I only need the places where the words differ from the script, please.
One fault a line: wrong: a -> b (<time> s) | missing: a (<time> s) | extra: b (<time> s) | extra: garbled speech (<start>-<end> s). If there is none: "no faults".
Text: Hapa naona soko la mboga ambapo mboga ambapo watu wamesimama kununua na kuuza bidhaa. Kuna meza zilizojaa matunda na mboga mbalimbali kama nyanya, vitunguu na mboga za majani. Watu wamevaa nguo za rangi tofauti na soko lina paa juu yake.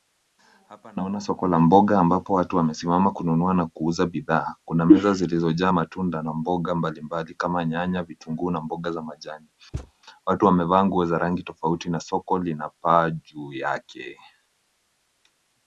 missing: mboga ambapo (2.3 s)